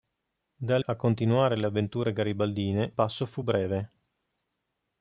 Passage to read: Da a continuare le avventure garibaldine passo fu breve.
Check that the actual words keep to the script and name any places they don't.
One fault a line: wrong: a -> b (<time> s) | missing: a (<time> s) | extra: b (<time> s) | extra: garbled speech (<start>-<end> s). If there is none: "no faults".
no faults